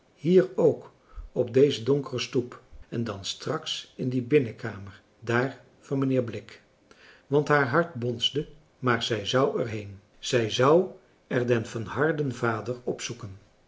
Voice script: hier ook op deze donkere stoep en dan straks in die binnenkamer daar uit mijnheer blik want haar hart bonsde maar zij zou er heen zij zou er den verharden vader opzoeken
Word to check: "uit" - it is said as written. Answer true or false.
false